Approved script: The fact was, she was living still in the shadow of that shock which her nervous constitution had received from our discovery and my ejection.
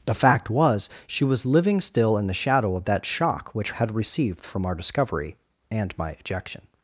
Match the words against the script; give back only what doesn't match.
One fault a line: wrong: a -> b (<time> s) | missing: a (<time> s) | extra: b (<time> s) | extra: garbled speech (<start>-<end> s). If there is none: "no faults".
missing: her nervous constitution (3.7 s)